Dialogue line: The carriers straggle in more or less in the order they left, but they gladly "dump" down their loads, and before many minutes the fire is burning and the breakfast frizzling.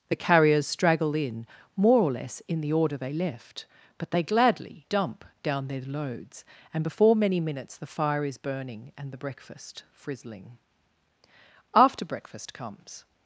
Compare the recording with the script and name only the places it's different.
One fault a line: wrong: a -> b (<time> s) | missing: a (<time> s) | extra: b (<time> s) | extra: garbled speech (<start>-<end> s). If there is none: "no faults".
extra: After breakfast comes (11.8 s)